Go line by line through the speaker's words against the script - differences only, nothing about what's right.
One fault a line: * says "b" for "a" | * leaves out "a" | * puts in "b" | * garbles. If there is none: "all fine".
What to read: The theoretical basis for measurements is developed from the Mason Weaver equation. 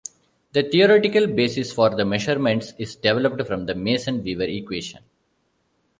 * puts in "the"